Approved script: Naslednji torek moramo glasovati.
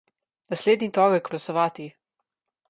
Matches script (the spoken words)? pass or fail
fail